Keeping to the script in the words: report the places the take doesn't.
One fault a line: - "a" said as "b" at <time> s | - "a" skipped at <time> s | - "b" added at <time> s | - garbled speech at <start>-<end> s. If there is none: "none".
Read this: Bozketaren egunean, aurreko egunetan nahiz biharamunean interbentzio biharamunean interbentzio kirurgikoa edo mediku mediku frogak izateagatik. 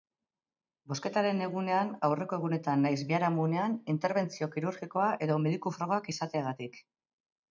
- "biharamunean interbentzio" skipped at 4.5 s
- "mediku" skipped at 5.7 s